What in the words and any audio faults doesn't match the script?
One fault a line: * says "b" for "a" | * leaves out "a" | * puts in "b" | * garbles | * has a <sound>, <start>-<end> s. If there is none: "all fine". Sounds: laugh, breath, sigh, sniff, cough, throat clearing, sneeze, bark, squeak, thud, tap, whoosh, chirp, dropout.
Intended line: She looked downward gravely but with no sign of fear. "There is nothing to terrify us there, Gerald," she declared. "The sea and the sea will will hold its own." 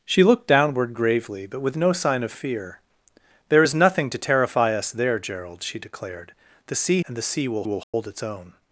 * has a dropout, 7.8-7.9 s